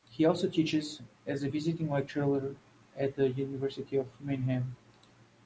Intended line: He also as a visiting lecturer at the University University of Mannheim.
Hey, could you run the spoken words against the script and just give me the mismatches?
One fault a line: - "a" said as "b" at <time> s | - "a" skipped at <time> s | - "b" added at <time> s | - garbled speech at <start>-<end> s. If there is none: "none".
- "teaches" added at 0.5 s
- "University" skipped at 4.0 s